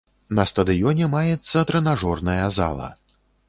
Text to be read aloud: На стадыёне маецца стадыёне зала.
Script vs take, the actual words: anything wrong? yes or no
yes